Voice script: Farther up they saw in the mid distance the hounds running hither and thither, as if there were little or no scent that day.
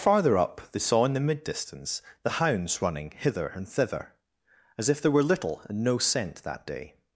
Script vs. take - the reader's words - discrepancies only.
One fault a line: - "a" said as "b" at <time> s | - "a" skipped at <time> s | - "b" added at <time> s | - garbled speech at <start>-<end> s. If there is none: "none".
- "or" said as "and" at 5.7 s